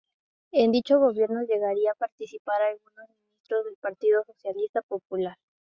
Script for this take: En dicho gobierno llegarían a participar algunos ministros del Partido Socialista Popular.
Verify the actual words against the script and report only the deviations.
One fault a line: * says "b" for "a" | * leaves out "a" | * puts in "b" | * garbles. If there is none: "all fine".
all fine